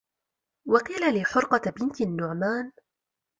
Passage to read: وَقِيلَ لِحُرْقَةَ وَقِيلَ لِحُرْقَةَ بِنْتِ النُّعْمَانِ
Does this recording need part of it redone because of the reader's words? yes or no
yes